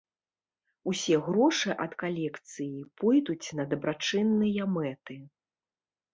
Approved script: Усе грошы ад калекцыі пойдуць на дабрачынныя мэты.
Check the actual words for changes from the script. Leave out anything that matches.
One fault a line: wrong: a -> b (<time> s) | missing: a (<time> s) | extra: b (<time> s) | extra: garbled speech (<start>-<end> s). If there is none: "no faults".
no faults